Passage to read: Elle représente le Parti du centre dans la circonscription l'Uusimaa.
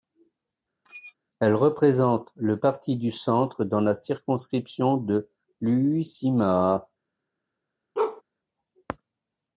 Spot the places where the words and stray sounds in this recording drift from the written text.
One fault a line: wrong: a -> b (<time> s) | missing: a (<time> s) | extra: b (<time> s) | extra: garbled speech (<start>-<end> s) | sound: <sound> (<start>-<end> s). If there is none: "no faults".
sound: squeak (0.8-1.1 s)
extra: de (4.9 s)
sound: bark (7.9-8.2 s)